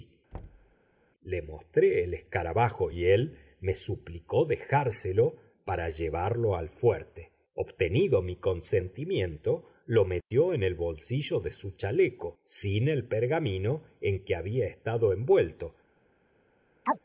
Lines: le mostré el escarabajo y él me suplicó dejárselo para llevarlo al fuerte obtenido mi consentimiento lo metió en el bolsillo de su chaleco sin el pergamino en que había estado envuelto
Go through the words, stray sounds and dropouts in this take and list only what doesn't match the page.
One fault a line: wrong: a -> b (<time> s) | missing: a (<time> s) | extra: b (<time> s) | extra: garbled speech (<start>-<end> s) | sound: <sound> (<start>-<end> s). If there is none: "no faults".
sound: thud (0.3-0.8 s)
sound: chirp (16.8-17.0 s)